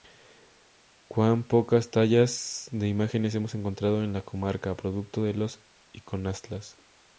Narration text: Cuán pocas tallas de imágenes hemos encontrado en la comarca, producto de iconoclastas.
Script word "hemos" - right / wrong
right